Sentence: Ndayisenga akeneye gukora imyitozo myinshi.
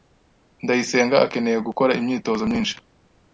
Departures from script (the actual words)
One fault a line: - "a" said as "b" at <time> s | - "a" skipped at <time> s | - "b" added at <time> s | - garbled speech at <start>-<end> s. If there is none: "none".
none